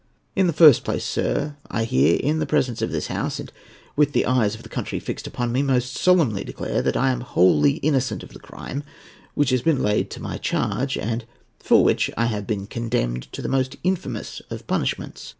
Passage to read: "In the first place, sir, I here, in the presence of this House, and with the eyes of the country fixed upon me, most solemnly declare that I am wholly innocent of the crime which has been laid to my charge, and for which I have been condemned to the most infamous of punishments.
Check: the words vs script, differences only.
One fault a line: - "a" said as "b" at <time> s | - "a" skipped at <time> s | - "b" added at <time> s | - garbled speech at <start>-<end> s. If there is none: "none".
none